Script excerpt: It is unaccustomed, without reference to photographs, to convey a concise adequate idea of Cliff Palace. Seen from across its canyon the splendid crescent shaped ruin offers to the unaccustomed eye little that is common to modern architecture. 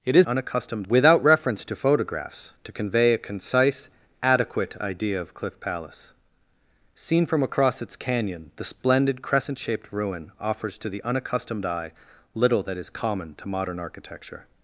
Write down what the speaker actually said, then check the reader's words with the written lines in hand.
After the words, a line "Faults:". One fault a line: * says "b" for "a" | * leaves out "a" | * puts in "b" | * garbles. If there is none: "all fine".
It is unaccustomed, without reference to photographs, to convey a concise adequate idea of Cliff Palace. Seen from across its canyon the splendid crescent shaped ruin offers to the unaccustomed eye little that is common to modern architecture.
Faults:
all fine